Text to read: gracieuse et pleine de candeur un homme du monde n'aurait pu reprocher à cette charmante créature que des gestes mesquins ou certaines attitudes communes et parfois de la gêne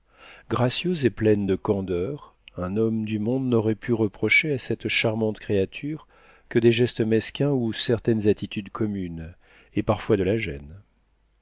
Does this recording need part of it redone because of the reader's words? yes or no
no